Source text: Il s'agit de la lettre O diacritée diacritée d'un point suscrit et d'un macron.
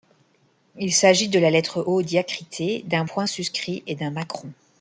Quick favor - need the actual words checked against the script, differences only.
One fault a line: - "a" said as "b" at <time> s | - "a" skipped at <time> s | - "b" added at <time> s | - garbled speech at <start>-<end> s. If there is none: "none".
- "diacritée" skipped at 2.8 s